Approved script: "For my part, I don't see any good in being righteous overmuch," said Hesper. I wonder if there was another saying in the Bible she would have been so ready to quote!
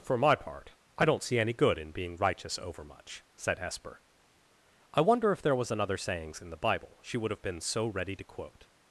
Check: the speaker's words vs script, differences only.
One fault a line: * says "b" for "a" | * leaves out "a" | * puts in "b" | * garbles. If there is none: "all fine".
* says "sayings" for "saying"